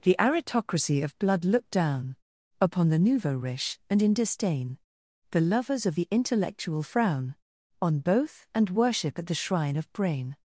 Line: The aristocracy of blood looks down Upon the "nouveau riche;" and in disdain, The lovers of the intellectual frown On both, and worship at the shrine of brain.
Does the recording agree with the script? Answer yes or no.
no